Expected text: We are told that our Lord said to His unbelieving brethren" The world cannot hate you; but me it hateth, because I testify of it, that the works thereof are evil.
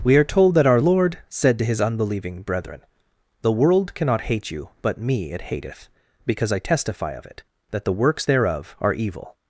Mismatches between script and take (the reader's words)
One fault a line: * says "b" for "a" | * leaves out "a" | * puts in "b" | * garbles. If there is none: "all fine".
all fine